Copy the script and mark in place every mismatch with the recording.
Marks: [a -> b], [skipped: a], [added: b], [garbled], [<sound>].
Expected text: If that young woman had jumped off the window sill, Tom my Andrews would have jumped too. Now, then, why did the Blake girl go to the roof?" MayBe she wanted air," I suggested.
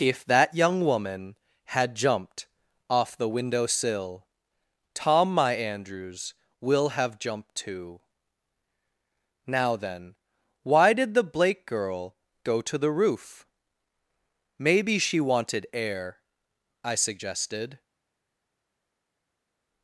If that young woman had jumped off the window sill, Tom my Andrews [would -> will] have jumped too. Now, then, why did the Blake girl go to the roof?" MayBe she wanted air," I suggested.